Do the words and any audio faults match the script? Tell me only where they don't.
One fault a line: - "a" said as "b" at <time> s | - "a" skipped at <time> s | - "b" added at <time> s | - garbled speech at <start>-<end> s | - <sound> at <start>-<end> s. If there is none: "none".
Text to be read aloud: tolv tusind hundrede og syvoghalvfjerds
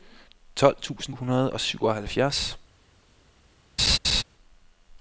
- laugh at 3.8-4.2 s